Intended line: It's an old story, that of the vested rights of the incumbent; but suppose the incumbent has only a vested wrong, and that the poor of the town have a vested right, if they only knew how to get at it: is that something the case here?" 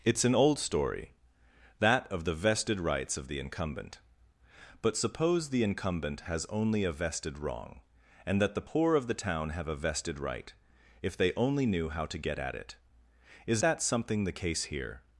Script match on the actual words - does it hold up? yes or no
yes